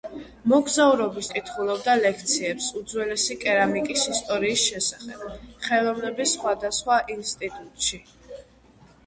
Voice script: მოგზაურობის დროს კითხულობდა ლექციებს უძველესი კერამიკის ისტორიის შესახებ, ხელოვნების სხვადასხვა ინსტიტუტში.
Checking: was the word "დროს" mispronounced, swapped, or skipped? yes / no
yes